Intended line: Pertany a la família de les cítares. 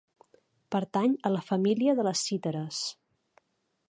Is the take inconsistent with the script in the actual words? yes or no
no